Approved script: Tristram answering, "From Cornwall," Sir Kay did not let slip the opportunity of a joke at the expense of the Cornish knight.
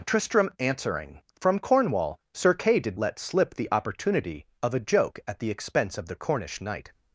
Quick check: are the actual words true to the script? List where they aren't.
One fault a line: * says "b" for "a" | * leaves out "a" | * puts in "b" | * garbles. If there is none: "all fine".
* leaves out "not"